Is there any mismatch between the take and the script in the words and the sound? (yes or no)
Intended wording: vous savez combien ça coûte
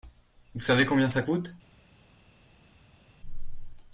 no